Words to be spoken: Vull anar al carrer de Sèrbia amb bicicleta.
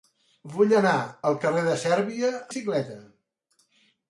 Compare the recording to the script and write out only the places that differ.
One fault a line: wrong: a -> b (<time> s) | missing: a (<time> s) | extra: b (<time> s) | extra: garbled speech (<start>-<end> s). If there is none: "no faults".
missing: amb (2.3 s)